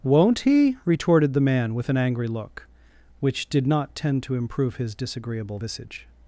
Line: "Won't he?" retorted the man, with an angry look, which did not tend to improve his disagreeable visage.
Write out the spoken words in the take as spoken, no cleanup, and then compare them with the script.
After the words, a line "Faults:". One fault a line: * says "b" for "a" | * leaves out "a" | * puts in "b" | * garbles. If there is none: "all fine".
"Won't he?" retorted the man, with an angry look, which did not tend to improve his disagreeable visage.
Faults:
all fine